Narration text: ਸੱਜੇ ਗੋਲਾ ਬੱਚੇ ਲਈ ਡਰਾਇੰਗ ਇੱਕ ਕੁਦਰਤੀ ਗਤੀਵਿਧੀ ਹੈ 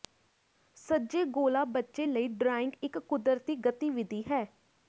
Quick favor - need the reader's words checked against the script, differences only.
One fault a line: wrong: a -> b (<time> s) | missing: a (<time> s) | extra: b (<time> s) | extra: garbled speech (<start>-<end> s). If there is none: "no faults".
no faults